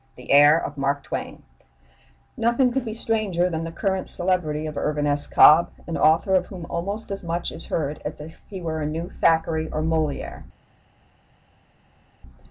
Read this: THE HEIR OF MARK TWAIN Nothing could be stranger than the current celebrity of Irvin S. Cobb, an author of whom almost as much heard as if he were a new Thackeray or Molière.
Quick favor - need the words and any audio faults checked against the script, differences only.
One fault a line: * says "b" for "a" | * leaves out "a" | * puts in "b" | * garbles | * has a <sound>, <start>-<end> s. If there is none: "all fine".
* puts in "is"